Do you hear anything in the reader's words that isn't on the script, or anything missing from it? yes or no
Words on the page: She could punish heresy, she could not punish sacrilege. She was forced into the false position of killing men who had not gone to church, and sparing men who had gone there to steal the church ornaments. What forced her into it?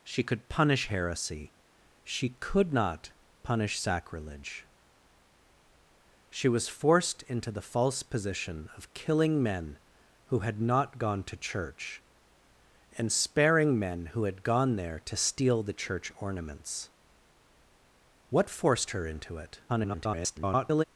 yes